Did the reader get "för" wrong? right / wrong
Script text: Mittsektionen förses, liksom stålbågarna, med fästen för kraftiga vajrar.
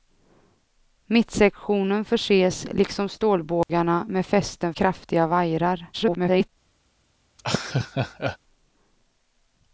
wrong